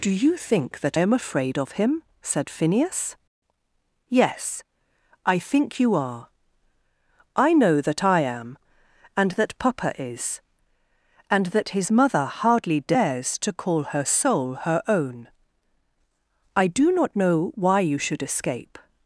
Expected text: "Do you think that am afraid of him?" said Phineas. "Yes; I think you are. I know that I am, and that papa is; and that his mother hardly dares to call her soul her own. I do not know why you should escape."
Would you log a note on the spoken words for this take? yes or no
no